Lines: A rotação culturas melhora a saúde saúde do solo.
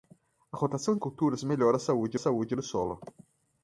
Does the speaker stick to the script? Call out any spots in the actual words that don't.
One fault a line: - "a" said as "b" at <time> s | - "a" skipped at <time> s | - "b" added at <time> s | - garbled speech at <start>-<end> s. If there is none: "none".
none